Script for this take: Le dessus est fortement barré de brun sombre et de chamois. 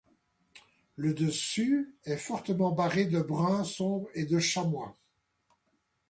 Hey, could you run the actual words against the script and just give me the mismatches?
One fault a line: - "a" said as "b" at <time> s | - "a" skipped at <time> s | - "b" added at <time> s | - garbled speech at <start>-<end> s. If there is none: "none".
none